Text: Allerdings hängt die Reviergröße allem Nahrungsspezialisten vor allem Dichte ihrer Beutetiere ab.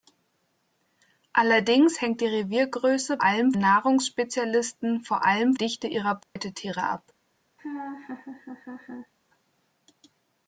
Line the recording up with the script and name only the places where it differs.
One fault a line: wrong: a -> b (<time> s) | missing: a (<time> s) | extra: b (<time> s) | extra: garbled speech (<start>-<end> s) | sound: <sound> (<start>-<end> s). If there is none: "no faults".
sound: dropout (6.2-6.4 s)
sound: laugh (7.6-9.1 s)